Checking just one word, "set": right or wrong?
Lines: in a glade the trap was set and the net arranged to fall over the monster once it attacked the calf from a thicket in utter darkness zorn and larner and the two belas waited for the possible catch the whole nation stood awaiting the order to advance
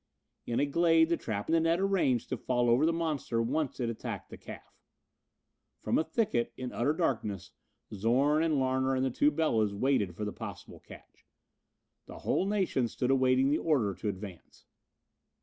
wrong